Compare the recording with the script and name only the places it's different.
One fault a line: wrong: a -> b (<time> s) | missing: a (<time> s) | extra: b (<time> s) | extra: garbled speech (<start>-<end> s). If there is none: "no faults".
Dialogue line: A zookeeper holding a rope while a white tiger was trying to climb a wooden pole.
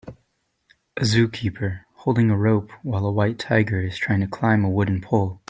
wrong: was -> is (3.8 s)